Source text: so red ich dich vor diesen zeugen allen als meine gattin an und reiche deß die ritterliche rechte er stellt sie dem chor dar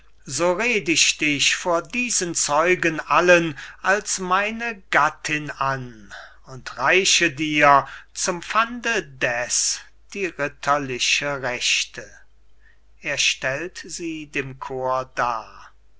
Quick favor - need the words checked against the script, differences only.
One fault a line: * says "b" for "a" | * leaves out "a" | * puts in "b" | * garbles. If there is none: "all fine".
* puts in "dir zum pfande"